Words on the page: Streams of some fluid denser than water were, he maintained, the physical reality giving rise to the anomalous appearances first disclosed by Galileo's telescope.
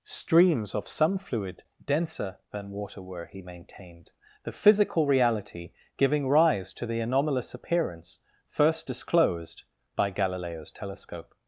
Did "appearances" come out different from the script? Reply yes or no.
yes